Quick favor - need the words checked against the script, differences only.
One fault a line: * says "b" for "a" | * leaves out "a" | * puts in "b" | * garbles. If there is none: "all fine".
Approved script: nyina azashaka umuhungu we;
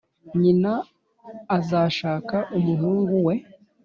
all fine